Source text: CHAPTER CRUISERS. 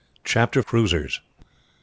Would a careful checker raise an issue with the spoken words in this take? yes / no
no